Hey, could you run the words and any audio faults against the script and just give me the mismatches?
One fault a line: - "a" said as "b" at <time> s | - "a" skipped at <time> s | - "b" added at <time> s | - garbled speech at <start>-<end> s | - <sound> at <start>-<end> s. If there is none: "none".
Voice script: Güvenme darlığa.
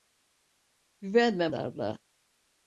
none